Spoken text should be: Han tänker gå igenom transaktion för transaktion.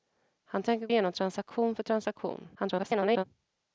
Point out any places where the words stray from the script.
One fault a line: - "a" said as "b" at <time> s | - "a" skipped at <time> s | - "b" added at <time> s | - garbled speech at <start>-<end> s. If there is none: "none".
- "gå" skipped at 0.9 s
- garbled speech at 2.5-3.2 s